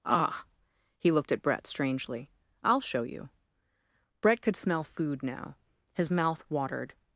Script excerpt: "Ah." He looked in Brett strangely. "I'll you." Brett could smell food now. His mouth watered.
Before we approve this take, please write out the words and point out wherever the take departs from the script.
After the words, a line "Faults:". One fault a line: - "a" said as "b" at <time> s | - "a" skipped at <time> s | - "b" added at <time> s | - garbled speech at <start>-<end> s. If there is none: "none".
"Ah." He looked at Brett strangely. "I'll show you." Brett could smell food now. His mouth watered.
Faults:
- "in" said as "at" at 1.3 s
- "show" added at 2.8 s